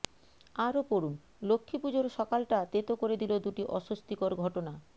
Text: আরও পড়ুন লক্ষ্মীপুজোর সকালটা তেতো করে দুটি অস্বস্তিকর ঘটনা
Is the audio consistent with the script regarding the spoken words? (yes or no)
no